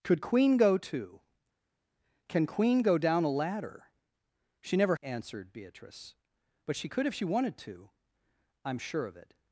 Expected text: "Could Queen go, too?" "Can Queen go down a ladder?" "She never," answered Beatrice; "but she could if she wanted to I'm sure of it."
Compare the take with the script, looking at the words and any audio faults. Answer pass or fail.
pass